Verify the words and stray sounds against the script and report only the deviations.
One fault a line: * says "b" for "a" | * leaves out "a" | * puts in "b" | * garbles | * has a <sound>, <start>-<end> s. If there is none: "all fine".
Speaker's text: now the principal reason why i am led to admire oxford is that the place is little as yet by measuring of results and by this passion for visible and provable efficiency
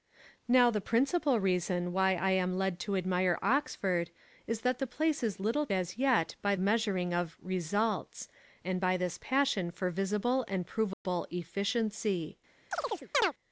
* has a dropout, 10.9-11.0 s
* has a chirp, 12.7-13.3 s